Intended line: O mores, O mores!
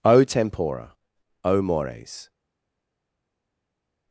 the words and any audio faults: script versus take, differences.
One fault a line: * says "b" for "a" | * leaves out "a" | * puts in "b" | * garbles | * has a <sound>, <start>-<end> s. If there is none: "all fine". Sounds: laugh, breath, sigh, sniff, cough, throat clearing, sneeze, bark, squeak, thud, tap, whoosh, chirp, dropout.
* says "tempora" for "mores"